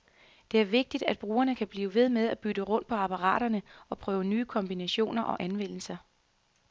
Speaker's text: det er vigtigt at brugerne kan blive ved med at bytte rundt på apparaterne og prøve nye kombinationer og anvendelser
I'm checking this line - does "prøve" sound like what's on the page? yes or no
yes